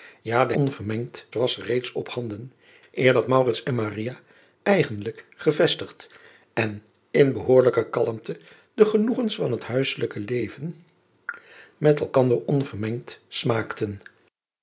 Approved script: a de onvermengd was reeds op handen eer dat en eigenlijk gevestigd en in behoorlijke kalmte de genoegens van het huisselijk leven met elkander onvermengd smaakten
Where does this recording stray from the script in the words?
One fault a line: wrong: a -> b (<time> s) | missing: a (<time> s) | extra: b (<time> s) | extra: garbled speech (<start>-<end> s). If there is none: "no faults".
no faults